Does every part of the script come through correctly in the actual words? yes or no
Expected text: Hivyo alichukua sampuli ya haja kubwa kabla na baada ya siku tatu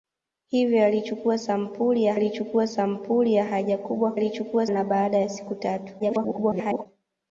no